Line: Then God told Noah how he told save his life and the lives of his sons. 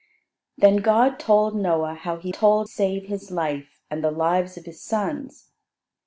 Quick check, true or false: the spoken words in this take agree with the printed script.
true